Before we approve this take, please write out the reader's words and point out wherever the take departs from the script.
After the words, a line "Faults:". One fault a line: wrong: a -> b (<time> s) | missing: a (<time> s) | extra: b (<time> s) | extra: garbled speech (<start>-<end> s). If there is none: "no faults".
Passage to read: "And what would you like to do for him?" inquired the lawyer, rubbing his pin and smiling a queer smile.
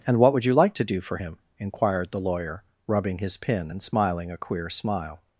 "And what would you like to do for him?" inquired the lawyer, rubbing his pin and smiling a queer smile.
Faults:
no faults